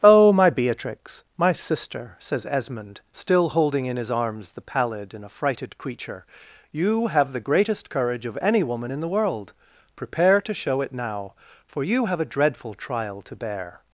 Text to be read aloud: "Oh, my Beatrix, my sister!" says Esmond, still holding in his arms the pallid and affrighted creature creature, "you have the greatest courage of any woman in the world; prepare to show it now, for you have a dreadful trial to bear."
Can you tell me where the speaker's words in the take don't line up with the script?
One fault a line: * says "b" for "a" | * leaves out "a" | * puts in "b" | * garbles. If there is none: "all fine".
* leaves out "creature"